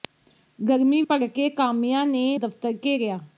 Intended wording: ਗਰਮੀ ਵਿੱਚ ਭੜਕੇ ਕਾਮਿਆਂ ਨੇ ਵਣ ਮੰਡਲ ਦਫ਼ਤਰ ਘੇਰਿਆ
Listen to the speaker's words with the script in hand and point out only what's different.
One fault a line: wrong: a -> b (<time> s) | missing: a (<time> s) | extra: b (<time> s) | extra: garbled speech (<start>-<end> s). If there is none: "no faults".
missing: ਵਿੱਚ (1.0 s)
missing: ਵਣ ਮੰਡਲ (2.4 s)